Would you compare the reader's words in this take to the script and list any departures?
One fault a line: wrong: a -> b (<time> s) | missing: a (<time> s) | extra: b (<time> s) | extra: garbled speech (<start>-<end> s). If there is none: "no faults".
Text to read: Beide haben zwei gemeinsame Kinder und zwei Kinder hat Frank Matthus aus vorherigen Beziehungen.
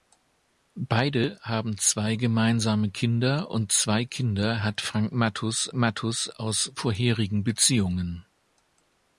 extra: Matthus (5.7 s)